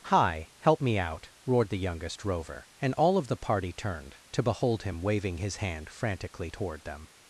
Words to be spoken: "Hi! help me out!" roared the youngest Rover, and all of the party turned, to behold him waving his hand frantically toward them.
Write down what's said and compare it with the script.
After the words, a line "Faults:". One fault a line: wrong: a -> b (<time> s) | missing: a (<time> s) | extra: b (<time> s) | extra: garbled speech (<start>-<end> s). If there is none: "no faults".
"Hi! help me out!" roared the youngest Rover, and all of the party turned, to behold him waving his hand frantically toward them.
Faults:
no faults